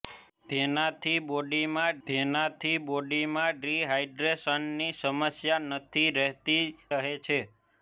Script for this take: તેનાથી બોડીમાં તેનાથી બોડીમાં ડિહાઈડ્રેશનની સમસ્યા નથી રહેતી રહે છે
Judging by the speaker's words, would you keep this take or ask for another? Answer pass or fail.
pass